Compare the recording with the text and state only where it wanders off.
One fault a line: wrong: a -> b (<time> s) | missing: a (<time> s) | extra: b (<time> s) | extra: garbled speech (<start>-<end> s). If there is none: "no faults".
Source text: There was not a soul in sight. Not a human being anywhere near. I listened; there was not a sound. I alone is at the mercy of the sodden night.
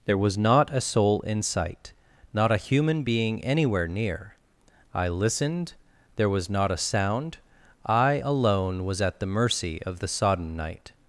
wrong: is -> was (8.9 s)